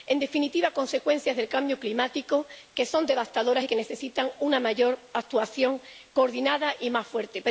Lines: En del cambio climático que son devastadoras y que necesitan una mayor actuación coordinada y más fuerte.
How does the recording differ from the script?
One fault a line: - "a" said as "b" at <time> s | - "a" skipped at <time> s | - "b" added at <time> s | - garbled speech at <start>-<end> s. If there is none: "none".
- "definitiva consecuencias" added at 0.2 s